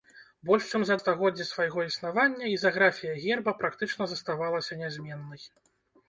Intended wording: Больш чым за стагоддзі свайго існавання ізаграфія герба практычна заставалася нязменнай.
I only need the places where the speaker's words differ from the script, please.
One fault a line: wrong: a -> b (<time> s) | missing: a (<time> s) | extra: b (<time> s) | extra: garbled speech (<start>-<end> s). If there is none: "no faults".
no faults